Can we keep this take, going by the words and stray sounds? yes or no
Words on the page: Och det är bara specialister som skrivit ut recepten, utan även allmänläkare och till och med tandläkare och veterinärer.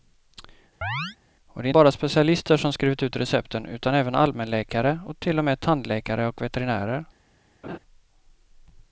no